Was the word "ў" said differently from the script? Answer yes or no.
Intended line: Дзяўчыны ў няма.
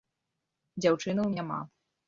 no